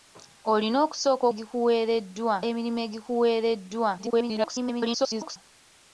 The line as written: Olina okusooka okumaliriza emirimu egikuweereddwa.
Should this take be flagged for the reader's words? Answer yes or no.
yes